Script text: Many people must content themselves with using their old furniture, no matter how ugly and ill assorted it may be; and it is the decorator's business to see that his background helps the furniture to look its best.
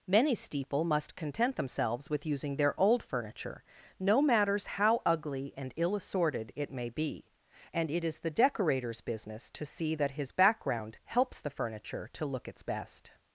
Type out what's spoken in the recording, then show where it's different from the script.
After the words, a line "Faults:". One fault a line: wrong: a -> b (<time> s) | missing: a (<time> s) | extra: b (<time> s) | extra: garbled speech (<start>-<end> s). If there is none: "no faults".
Many steeple must content themselves with using their old furniture, no matters how ugly and ill assorted it may be; and it is the decorator's business to see that his background helps the furniture to look its best.
Faults:
wrong: people -> steeple (0.3 s)
wrong: matter -> matters (4.2 s)